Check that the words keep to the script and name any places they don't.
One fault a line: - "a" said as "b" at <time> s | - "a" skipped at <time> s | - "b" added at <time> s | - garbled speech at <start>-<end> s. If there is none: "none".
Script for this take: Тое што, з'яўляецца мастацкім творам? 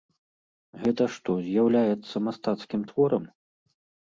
- "Тое" said as "Гэта" at 0.8 s